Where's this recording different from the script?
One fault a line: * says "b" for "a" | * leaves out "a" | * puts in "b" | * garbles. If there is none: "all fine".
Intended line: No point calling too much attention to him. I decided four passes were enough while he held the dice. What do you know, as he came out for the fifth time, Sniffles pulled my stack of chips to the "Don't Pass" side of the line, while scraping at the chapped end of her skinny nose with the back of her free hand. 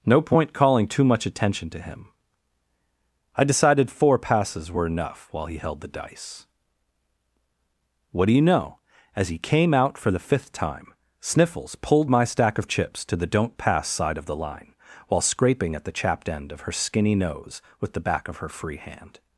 all fine